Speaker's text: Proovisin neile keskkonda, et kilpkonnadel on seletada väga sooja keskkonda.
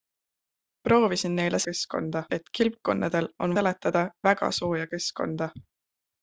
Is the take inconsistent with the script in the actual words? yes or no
no